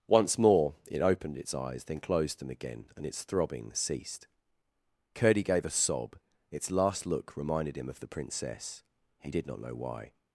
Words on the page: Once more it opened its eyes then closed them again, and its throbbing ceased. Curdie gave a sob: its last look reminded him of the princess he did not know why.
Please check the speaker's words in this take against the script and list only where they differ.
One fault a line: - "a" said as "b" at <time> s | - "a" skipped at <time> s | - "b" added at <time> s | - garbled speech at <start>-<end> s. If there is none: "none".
none